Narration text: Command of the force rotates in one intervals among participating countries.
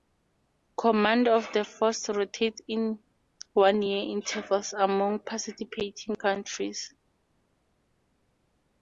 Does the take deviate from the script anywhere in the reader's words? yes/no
yes